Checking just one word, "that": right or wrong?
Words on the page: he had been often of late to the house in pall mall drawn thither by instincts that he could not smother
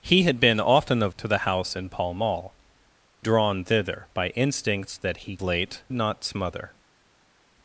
right